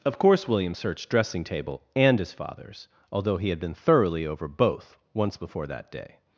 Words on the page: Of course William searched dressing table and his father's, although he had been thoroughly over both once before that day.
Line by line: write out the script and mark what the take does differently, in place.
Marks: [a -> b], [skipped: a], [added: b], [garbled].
Of course William searched dressing table and his father's, although he had been thoroughly over both once before that day.